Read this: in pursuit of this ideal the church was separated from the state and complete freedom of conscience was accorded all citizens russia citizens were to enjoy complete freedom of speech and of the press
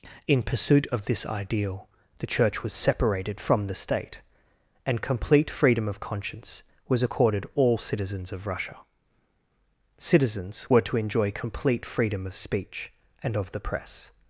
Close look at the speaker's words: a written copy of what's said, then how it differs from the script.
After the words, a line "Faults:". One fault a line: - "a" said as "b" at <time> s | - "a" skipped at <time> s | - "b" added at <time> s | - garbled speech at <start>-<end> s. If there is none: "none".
in pursuit of this ideal the church was separated from the state and complete freedom of conscience was accorded all citizens of russia citizens were to enjoy complete freedom of speech and of the press
Faults:
- "of" added at 8.3 s